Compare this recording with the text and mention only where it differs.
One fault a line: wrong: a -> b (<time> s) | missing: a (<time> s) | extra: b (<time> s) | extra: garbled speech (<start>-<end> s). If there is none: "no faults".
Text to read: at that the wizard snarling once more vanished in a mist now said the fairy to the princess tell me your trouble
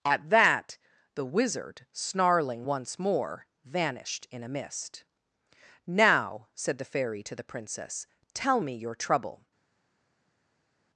no faults